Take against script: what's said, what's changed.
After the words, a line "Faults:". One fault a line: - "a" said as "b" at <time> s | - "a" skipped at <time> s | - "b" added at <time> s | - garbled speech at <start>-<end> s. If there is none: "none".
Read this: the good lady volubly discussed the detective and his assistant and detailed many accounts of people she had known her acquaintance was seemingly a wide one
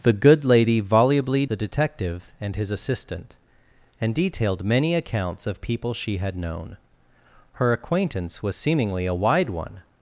the good lady volubly the detective and his assistant and detailed many accounts of people she had known her acquaintance was seemingly a wide one
Faults:
- "discussed" skipped at 1.4 s